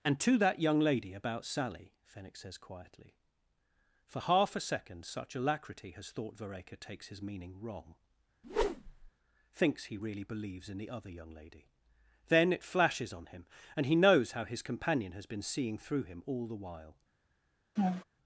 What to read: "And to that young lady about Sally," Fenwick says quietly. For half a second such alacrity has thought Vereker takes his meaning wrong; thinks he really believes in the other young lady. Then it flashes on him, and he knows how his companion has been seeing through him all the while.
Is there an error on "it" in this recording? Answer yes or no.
no